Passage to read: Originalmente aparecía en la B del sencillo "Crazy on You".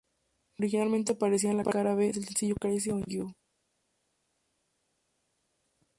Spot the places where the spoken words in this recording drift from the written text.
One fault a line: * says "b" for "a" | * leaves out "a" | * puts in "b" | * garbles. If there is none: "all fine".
* puts in "Cara"